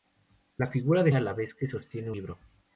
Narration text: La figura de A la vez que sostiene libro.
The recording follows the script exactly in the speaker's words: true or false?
true